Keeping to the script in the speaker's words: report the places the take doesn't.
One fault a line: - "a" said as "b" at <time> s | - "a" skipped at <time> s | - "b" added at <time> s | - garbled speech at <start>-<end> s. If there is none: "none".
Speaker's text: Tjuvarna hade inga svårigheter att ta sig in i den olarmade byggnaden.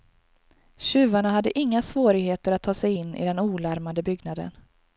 none